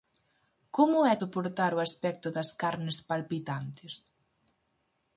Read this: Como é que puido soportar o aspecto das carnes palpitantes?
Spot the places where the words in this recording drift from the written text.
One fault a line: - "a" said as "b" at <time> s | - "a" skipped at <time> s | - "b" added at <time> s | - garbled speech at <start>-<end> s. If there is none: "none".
- "que puido" skipped at 1.1 s